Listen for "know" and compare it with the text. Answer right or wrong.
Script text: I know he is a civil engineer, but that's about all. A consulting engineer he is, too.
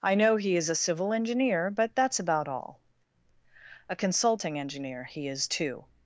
right